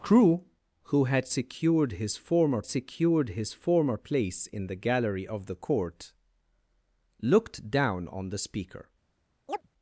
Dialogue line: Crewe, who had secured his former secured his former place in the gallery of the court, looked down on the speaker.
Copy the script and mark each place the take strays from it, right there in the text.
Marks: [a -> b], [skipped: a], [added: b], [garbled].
Crewe, who had secured his former secured his former place in the gallery of the court, looked down on the speaker.